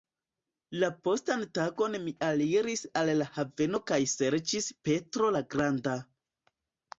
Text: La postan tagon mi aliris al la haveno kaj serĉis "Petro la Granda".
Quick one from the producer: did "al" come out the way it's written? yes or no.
yes